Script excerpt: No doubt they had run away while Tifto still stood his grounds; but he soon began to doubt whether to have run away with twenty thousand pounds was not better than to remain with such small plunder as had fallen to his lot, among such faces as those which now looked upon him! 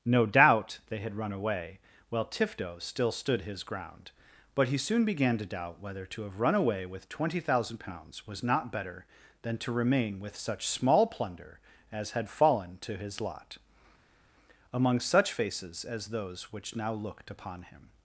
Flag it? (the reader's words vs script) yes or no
yes